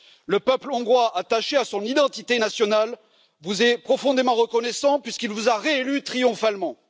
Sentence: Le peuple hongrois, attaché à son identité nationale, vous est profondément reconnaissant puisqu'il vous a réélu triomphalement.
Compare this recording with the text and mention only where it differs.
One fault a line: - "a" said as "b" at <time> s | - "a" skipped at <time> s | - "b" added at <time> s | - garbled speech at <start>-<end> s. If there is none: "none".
none